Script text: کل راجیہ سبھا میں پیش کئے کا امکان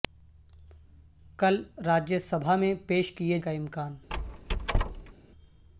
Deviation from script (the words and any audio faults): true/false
true